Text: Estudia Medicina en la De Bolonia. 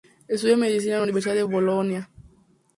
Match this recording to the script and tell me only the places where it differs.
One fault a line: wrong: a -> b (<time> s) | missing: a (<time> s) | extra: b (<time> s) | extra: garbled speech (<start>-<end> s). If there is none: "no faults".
extra: Universidad (1.0 s)